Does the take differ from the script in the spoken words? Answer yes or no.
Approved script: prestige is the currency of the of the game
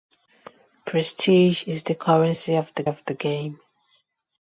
no